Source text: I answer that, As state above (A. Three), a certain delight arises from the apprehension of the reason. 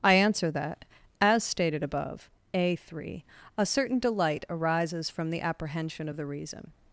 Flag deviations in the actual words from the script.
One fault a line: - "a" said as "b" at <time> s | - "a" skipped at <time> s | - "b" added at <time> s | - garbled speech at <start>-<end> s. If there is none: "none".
- "state" said as "stated" at 1.4 s